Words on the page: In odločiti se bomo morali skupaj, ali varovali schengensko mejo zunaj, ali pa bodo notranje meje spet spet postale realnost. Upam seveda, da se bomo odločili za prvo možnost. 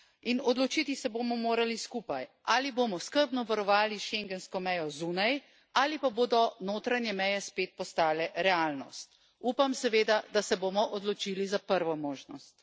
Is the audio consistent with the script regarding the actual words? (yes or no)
no